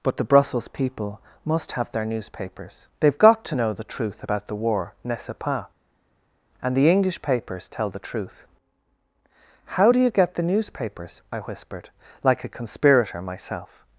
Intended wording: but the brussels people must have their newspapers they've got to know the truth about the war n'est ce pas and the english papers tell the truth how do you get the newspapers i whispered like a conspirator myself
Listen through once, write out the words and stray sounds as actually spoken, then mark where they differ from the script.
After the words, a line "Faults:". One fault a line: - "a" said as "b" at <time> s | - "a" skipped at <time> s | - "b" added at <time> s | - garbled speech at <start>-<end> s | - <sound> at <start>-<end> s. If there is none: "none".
but the brussels people must have their newspapers they've got to know the truth about the war n'est ce pas and the english papers tell the truth how do you get the newspapers i whispered like a conspirator myself
Faults:
none